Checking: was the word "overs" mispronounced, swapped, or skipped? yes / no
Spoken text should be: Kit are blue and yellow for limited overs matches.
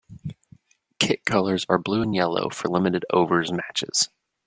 no